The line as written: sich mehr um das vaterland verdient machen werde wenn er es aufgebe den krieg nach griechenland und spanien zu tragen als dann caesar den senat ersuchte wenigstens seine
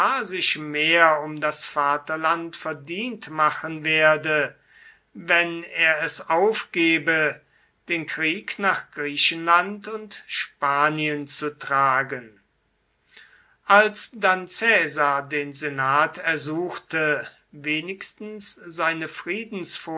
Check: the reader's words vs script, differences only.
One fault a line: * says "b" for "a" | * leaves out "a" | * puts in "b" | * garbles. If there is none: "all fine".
all fine